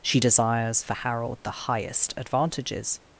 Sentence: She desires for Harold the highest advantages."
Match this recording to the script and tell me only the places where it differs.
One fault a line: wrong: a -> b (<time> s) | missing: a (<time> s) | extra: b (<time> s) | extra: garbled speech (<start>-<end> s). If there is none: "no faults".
no faults